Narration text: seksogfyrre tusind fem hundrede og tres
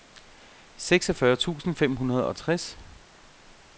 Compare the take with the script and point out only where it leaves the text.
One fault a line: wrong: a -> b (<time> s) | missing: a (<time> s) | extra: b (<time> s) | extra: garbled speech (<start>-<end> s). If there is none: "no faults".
no faults